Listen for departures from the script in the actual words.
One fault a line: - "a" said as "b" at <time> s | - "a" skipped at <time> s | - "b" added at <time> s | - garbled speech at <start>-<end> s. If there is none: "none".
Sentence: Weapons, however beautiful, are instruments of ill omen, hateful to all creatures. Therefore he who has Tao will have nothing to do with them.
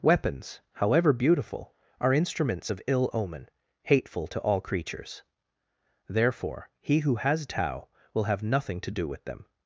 none